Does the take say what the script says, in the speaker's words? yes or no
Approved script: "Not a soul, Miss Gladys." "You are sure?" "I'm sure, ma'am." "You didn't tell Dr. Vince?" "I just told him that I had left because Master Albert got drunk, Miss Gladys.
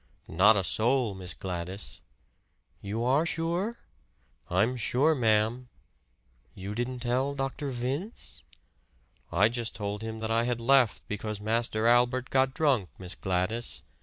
yes